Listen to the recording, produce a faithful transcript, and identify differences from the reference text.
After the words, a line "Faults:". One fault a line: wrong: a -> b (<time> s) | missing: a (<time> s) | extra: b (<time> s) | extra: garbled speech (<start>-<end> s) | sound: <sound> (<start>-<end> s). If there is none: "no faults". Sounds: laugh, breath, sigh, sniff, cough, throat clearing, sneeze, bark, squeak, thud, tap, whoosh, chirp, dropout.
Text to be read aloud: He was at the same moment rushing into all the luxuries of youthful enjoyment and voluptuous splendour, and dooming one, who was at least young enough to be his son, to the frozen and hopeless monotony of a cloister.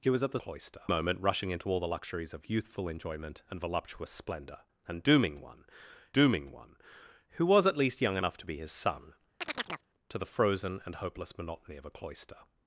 He was at the cloister moment rushing into all the luxuries of youthful enjoyment and voluptuous splendour, and dooming one dooming one, who was at least young enough to be his son, to the frozen and hopeless monotony of a cloister.
Faults:
wrong: same -> cloister (0.4 s)
extra: dooming one (6.1 s)
sound: chirp (9.4-9.9 s)